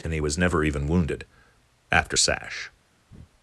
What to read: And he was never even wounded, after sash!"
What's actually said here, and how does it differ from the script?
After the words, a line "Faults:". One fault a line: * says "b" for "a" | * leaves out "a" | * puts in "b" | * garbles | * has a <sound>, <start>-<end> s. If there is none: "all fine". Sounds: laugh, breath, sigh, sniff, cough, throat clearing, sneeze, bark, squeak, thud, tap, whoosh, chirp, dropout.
And he was never even wounded, after sash!"
Faults:
* has a breath, 3.1-3.3 s